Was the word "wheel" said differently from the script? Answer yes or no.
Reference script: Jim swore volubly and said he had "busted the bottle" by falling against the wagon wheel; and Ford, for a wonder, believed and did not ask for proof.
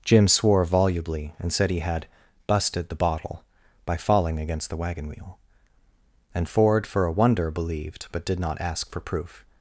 no